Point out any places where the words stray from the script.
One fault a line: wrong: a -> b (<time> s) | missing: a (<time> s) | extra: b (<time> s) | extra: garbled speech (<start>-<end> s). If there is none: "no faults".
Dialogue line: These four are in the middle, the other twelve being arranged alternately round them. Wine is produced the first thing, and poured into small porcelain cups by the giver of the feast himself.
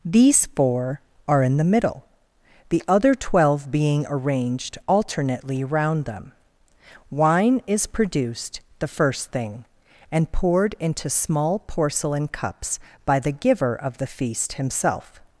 no faults